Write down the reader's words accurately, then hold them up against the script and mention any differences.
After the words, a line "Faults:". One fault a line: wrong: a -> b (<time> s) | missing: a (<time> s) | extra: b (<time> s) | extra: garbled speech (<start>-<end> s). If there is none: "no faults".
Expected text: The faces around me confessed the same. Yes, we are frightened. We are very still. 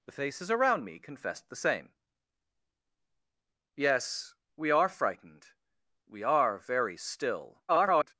The faces around me confessed the same. Yes, we are frightened. We are very still. [garbled]
Faults:
extra: garbled speech (7.7-8.1 s)